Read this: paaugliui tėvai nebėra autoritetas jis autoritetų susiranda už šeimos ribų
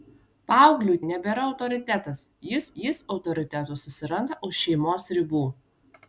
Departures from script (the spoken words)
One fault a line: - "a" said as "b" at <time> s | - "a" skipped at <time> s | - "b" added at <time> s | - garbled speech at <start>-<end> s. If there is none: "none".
- "tėvai" skipped at 1.0 s
- "jis" added at 2.8 s